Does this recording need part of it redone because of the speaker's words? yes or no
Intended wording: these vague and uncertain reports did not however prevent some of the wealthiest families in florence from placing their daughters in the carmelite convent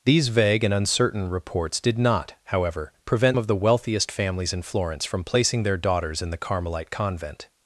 yes